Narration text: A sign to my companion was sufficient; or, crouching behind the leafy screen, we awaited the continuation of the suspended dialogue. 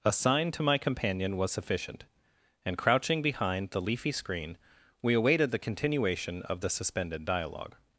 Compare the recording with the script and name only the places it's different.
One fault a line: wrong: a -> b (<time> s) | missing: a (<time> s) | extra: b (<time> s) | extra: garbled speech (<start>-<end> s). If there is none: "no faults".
wrong: or -> and (2.6 s)